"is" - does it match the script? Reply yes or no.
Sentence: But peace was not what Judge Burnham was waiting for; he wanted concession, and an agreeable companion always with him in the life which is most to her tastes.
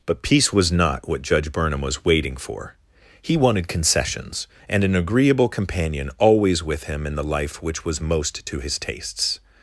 no